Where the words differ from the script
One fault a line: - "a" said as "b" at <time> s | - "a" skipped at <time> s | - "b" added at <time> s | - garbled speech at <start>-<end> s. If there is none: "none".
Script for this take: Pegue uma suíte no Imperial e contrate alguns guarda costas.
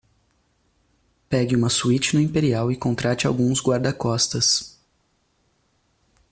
none